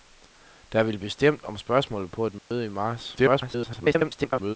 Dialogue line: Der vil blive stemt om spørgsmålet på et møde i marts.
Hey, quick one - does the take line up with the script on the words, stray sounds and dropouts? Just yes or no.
no